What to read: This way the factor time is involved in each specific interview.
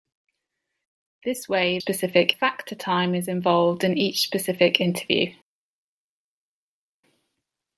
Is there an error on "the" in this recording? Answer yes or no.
yes